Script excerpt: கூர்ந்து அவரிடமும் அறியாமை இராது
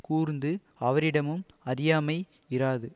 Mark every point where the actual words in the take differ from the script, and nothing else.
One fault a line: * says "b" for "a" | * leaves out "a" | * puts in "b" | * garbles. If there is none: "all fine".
all fine